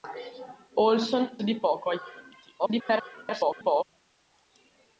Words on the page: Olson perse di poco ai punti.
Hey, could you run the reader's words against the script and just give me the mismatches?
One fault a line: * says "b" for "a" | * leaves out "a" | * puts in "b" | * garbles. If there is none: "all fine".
* leaves out "perse"
* garbles